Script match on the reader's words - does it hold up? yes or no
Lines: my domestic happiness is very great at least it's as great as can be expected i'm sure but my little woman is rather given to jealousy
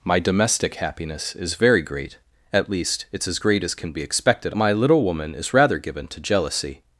no